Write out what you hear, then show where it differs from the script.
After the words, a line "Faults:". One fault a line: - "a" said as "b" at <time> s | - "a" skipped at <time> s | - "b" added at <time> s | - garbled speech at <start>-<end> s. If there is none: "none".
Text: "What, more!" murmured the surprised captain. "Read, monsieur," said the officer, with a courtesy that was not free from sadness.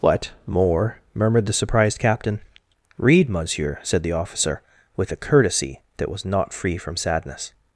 "What, more!" murmured the surprised captain. "Read, monsieur," said the officer, with a courtesy that was not free from sadness.
Faults:
none